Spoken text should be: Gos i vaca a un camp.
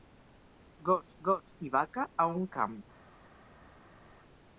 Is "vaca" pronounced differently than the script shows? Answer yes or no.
no